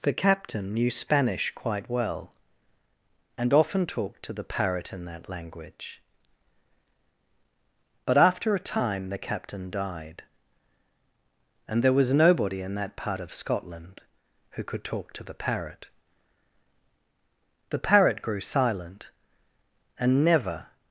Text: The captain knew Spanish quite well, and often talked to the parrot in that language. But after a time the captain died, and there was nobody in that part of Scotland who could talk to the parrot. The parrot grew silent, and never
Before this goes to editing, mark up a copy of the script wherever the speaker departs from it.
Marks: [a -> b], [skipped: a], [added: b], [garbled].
The captain knew Spanish quite well, and often talked to the parrot in that language. But after a time the captain died, and there was nobody in that part of Scotland who could talk to the parrot. The parrot grew silent, and never